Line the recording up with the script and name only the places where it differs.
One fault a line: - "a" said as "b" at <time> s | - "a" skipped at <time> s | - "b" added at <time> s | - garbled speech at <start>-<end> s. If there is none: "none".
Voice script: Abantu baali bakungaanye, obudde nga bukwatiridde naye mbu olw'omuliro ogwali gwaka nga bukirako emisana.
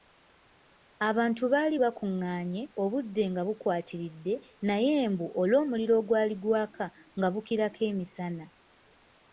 none